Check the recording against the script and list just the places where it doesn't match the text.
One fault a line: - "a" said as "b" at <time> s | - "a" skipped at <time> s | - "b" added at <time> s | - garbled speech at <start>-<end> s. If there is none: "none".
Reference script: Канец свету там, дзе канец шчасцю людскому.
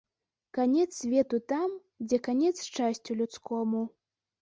none